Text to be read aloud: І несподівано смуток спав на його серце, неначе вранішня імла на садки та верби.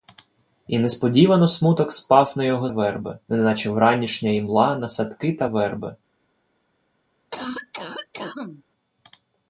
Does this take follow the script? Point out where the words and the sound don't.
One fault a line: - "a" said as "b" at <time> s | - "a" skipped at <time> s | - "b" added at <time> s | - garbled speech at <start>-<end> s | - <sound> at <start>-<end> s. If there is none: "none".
- "серце" said as "верби" at 2.7 s
- cough at 7.3-8.6 s